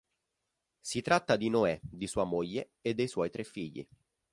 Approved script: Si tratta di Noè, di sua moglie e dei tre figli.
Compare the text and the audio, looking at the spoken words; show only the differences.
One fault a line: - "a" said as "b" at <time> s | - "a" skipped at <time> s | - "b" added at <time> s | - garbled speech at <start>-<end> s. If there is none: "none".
- "suoi" added at 3.1 s